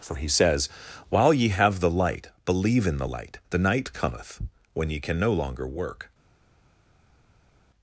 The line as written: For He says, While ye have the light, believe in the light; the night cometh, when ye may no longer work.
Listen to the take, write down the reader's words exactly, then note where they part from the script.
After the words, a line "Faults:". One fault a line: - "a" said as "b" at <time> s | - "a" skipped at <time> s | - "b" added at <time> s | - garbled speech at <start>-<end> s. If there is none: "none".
For He says, While ye have the light, believe in the light; the night cometh, when ye can no longer work.
Faults:
- "may" said as "can" at 5.0 s